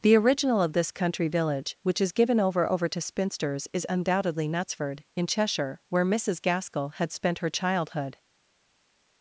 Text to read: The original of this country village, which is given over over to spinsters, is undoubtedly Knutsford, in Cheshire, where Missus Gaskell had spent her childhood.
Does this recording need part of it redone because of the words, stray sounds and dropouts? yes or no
no